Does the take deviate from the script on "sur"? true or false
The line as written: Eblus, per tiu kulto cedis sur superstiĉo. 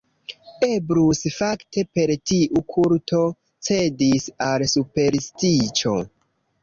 true